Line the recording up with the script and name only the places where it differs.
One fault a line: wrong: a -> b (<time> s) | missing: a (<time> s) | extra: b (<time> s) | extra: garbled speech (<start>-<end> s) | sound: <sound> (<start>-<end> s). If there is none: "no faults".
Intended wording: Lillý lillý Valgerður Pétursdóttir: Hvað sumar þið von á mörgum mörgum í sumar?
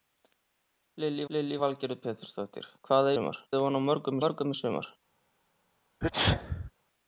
sound: sneeze (6.0-6.7 s)